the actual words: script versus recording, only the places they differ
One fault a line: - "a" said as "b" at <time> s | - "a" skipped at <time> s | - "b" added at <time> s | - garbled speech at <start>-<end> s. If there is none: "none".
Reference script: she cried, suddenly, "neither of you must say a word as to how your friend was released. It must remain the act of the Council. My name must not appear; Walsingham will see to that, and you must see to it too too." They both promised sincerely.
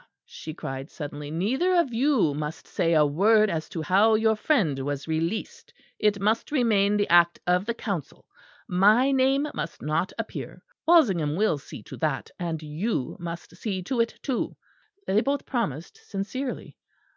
- "too" skipped at 14.6 s